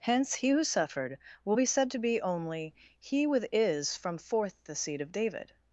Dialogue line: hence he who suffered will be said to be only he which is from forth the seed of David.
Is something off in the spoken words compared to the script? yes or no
yes